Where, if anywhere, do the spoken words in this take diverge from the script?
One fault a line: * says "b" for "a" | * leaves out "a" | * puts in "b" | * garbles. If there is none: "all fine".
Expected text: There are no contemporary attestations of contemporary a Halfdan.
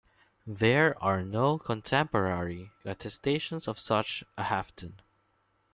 * says "such" for "contemporary"